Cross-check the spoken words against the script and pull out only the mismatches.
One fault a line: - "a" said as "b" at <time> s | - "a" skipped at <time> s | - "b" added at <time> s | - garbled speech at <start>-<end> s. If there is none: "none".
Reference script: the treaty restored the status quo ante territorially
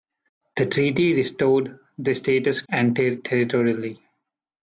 - "quo" skipped at 2.6 s